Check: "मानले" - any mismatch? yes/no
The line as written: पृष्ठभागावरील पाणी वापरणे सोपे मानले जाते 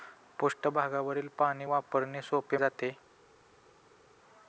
yes